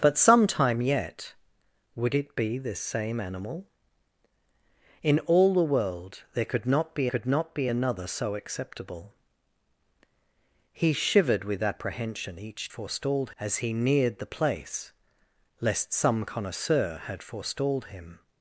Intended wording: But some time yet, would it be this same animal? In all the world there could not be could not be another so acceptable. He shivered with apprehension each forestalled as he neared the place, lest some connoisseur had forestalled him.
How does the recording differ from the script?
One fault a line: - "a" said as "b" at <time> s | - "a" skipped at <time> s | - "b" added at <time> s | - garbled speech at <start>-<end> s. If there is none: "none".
none